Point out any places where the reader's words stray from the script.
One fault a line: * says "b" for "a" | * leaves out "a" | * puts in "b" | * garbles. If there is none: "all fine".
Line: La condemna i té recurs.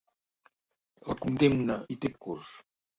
all fine